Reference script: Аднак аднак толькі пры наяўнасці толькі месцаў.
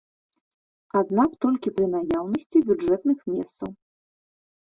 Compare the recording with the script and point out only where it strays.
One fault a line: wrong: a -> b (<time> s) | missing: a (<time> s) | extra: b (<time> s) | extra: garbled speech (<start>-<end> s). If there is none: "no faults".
missing: аднак (1.3 s)
wrong: толькі -> бюджэтных (2.7 s)